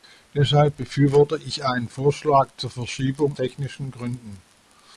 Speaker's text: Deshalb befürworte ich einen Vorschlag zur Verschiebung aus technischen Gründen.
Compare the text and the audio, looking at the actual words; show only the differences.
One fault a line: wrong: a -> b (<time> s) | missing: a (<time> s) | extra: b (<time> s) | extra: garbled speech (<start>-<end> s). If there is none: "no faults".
missing: aus (3.4 s)